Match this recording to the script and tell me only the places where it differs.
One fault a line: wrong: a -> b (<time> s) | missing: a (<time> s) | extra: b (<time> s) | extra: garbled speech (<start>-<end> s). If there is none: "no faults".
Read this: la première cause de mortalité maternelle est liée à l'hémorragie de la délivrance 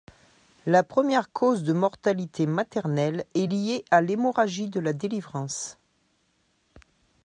no faults